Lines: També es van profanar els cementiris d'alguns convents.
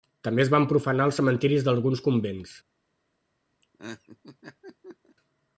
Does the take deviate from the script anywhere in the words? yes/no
no